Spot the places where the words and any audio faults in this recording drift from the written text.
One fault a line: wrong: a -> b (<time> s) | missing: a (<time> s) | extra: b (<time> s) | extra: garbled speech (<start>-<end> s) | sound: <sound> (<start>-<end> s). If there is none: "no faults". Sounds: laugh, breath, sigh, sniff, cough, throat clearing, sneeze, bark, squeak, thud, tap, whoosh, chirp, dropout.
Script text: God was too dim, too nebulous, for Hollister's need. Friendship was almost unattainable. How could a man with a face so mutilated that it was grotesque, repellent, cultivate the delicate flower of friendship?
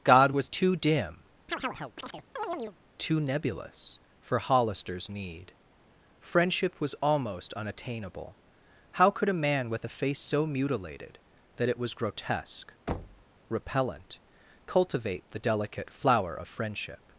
sound: chirp (1.5-2.8 s)
sound: thud (12.9-13.3 s)